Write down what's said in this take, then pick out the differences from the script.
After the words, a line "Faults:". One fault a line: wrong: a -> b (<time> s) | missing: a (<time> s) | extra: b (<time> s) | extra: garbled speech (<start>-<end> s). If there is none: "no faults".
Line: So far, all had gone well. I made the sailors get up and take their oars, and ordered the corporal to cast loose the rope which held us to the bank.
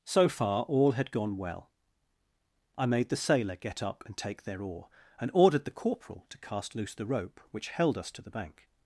So far, all had gone well. I made the sailor get up and take their oar, and ordered the corporal to cast loose the rope which held us to the bank.
Faults:
wrong: sailors -> sailor (3.1 s)
wrong: oars -> oar (4.6 s)